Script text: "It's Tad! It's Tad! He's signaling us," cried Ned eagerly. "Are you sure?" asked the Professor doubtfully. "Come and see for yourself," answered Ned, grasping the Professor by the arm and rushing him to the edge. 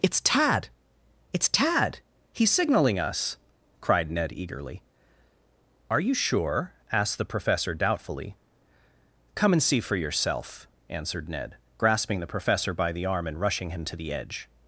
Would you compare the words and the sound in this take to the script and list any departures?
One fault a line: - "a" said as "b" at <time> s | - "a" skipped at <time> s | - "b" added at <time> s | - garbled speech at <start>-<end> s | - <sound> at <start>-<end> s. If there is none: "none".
none